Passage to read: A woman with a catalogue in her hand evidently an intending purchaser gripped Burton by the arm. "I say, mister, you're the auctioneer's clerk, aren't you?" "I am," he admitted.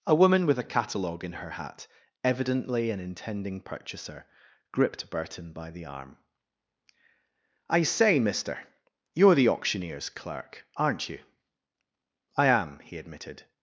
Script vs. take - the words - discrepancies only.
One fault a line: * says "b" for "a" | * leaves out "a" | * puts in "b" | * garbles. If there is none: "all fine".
* says "hat" for "hand"